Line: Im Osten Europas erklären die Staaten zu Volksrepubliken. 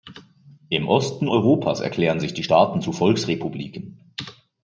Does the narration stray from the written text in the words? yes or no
yes